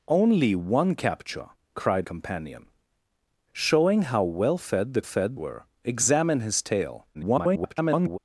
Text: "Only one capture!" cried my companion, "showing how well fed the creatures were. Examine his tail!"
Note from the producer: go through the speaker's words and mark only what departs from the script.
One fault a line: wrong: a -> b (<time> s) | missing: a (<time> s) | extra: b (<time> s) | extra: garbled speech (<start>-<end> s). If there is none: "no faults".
missing: my (2.0 s)
wrong: creatures -> fed (5.0 s)
extra: garbled speech (7.1-8.2 s)